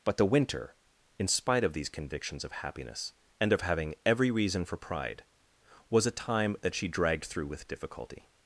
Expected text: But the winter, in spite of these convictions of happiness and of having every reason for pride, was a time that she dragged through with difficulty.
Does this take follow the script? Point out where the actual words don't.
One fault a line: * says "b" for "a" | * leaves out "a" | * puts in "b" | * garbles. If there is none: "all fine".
all fine